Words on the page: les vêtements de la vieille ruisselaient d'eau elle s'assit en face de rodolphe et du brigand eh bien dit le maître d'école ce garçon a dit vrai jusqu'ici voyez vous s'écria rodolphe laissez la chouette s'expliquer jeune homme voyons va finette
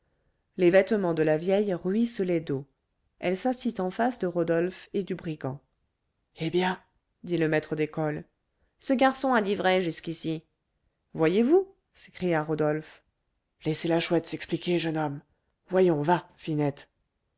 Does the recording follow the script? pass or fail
pass